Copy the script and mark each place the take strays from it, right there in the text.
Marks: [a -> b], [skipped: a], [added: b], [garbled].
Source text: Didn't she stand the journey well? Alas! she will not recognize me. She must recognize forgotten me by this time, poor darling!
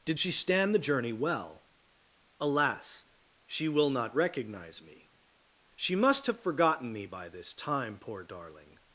[Didn't -> Did] she stand the journey well? Alas! she will not recognize me. She must [recognize -> have] forgotten me by this time, poor darling!